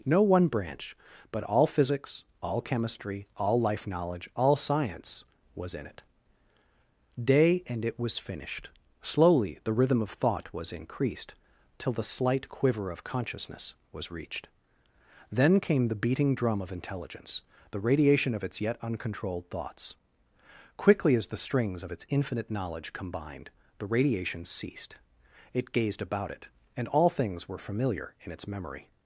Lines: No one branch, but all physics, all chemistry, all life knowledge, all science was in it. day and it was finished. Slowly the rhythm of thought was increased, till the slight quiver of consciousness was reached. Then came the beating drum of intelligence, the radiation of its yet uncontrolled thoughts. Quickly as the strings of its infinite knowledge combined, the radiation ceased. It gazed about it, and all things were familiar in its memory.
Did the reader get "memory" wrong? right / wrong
right